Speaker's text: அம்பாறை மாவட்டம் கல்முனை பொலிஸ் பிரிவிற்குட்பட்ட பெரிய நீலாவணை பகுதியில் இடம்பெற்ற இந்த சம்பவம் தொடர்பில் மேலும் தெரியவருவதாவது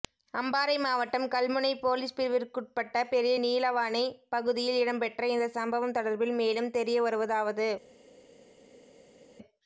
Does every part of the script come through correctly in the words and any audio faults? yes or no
yes